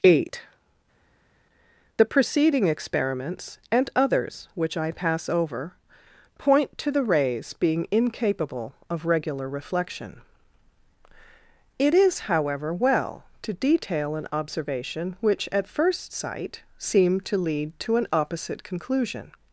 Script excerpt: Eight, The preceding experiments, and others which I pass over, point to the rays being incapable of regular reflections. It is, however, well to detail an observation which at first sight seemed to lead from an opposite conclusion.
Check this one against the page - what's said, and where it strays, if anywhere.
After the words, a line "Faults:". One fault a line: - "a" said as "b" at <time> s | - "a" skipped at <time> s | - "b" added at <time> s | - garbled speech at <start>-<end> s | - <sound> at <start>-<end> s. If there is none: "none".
Eight, The preceding experiments, and others which I pass over, point to the rays being incapable of regular reflection. It is, however, well to detail an observation which at first sight seemed to lead to an opposite conclusion.
Faults:
- "reflections" said as "reflection" at 9.5 s
- "from" said as "to" at 17.8 s